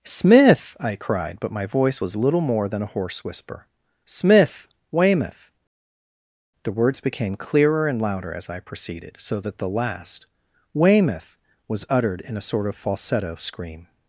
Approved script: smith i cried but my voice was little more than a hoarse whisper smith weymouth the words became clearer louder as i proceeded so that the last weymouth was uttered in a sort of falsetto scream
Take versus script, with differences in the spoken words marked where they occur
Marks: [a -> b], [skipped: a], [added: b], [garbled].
smith i cried but my voice was little more than a hoarse whisper smith weymouth the words became clearer [added: and] louder as i proceeded so that the last weymouth was uttered in a sort of falsetto scream